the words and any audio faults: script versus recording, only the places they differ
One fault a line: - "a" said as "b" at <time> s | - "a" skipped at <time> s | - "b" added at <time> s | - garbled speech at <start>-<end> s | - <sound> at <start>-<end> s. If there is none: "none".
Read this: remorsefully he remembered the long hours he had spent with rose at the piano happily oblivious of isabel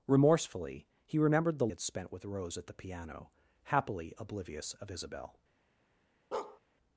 - "long hours he" skipped at 1.7 s
- bark at 6.3-6.6 s